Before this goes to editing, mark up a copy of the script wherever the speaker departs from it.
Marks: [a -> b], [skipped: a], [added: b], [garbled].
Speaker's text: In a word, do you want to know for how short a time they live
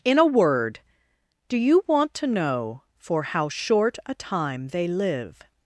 In a word, do you want to know for how short a time they live